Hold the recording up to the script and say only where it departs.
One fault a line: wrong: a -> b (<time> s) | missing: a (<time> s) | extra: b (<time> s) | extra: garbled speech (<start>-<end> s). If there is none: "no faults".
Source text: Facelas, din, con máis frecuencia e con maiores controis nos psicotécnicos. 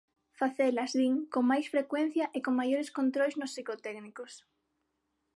no faults